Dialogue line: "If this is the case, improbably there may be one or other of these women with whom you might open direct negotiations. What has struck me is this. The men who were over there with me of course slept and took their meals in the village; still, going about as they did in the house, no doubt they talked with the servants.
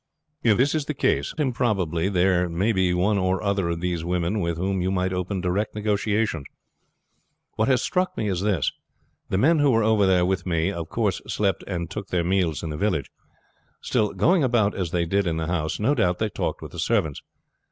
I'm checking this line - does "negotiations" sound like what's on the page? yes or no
yes